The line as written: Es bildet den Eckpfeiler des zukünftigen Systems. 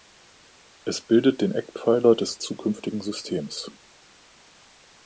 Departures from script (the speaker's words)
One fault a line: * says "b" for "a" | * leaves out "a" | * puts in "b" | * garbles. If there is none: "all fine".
all fine